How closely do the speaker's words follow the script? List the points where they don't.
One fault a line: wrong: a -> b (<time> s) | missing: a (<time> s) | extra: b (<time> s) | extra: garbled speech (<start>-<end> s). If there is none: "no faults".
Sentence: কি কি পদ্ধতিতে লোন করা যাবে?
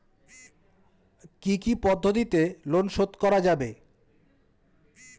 extra: শোধ (2.9 s)